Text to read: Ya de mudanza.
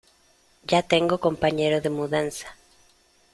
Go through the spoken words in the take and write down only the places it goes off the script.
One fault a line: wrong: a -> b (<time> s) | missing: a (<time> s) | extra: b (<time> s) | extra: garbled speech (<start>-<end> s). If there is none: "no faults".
extra: tengo compañero (0.8 s)